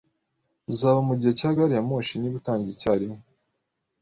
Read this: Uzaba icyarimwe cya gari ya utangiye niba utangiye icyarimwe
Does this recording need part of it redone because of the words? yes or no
yes